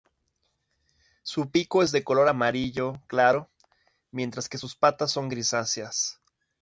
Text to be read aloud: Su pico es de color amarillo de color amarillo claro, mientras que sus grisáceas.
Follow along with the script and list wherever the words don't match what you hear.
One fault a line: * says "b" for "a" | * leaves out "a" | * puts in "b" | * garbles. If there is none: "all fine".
* leaves out "de color amarillo"
* puts in "patas son"